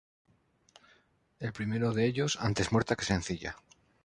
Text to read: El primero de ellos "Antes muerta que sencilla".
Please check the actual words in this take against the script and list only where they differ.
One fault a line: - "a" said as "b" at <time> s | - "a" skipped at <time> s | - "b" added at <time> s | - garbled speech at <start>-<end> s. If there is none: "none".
none